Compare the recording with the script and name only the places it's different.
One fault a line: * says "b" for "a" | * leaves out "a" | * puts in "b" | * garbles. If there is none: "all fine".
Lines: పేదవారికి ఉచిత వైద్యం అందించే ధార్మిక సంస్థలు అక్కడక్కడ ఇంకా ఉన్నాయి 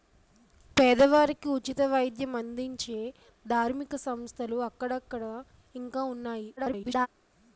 * garbles